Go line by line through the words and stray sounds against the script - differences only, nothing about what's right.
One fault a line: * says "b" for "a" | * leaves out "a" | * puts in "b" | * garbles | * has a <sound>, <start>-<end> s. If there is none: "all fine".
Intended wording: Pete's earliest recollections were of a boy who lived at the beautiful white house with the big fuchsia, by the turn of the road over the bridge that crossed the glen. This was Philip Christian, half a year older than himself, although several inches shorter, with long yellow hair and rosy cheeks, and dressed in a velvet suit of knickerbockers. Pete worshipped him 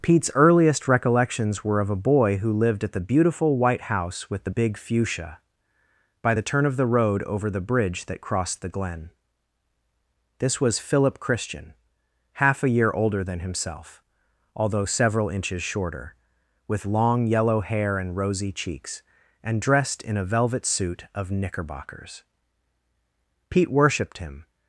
all fine